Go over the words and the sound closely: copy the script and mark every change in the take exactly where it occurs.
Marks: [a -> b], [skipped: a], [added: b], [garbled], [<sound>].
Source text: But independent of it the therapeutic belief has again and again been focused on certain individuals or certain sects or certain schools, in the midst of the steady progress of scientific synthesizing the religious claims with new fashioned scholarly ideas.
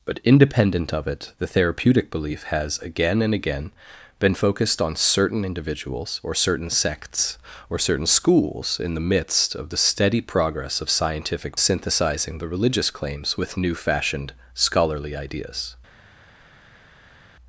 But independent of it the therapeutic belief has again and again been focused on certain individuals or certain sects or certain schools, in the midst of the steady progress of scientific synthesizing the religious claims with new fashioned scholarly ideas.